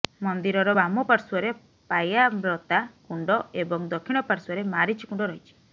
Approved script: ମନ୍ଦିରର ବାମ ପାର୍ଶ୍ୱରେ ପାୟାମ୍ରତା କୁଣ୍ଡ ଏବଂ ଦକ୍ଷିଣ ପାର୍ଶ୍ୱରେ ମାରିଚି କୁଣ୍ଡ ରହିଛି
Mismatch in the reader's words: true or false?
false